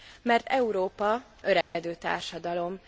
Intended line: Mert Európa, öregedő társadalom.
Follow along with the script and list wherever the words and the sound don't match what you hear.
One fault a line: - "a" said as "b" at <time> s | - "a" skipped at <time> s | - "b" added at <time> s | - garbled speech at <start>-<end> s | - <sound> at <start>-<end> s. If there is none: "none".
- dropout at 1.6-1.8 s